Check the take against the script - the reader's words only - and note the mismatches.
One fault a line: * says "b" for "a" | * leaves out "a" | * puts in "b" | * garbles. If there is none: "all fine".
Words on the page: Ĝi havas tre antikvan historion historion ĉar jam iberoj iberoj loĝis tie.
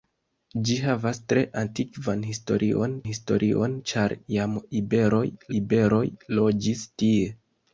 all fine